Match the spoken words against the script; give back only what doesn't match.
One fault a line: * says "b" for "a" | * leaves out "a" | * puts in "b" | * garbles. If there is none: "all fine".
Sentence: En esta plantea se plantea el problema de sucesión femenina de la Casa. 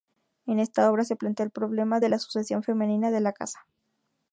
* says "obra" for "plantea"
* puts in "la"